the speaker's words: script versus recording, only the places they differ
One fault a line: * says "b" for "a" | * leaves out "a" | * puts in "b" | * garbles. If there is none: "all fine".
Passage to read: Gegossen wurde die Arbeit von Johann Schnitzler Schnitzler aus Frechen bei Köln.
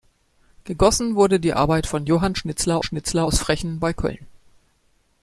all fine